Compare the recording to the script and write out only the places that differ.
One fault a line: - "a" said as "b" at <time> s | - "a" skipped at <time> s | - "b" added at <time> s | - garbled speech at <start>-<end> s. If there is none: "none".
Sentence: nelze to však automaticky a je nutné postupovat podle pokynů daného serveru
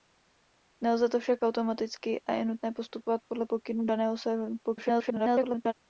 - garbled speech at 4.6-5.7 s